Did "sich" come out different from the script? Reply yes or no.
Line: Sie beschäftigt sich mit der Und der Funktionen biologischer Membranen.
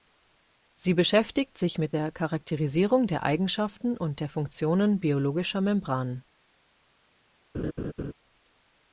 no